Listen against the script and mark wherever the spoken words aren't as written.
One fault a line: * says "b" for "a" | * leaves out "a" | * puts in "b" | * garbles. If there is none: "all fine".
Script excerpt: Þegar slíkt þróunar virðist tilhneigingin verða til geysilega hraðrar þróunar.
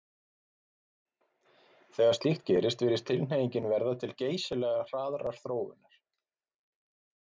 * says "gerist" for "þróunar"